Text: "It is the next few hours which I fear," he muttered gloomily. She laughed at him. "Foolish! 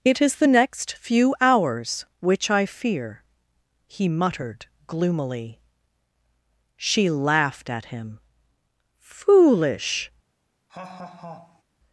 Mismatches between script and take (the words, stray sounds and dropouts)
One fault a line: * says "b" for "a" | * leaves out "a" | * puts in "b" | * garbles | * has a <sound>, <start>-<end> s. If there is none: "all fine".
* has a laugh, 10.7-11.6 s